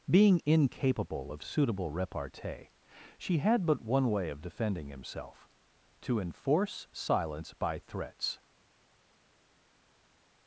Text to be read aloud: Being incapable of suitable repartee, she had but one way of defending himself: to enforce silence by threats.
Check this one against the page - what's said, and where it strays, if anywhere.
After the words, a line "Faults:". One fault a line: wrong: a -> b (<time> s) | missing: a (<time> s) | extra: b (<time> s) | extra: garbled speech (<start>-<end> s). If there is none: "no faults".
Being incapable of suitable repartee, she had but one way of defending himself: to enforce silence by threats.
Faults:
no faults